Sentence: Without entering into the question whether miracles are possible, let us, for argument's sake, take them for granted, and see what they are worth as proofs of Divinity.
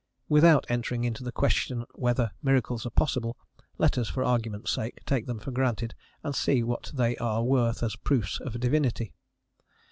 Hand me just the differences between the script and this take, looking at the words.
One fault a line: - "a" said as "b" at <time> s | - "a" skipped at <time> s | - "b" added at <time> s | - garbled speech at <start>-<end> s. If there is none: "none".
none